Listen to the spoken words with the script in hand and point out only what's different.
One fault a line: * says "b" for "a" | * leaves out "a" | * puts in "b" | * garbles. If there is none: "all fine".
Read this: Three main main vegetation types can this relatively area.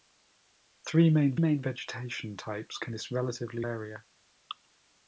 all fine